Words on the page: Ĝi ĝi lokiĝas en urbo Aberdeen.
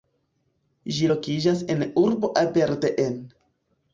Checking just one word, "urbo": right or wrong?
right